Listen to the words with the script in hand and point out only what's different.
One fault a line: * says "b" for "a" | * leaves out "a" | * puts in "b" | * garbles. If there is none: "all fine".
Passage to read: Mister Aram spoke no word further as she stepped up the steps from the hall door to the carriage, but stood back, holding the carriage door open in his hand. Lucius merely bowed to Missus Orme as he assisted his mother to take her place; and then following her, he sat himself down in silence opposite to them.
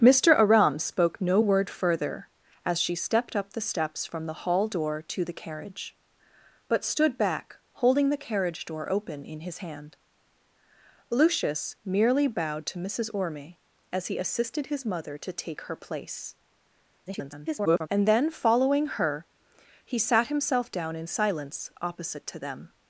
* garbles